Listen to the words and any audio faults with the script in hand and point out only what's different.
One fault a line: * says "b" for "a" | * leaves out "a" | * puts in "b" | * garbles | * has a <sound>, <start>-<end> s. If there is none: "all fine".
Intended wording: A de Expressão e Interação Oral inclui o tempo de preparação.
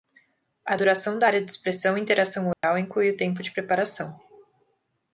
* puts in "duração da Área"
* has a dropout, 2.5-2.6 s